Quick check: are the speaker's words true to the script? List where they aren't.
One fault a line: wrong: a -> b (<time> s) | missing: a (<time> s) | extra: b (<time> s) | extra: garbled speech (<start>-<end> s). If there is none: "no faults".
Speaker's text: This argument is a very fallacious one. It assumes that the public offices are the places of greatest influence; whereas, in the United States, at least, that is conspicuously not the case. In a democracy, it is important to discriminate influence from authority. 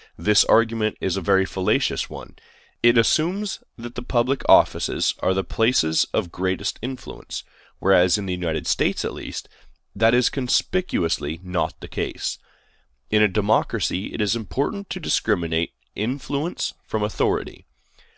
no faults